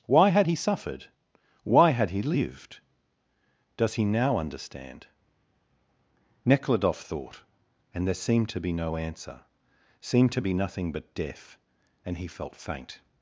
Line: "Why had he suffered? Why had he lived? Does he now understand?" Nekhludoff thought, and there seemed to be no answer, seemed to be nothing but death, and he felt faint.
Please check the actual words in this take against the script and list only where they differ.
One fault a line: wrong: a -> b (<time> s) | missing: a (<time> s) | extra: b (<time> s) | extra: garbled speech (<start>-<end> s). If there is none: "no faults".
no faults